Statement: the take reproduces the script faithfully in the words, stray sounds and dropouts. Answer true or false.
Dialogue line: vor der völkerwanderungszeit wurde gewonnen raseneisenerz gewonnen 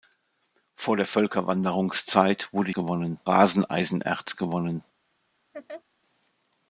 false